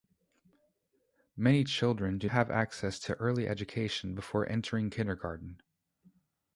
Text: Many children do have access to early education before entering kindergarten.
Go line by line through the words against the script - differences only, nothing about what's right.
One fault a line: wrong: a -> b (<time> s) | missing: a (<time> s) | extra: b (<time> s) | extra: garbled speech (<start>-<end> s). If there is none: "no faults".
no faults